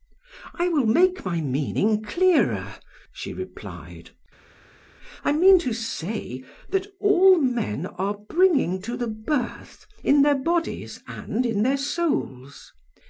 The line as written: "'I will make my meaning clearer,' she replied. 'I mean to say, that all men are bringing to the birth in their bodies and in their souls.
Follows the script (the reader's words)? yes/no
yes